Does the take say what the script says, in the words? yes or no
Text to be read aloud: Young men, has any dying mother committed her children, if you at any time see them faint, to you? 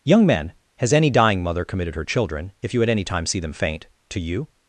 yes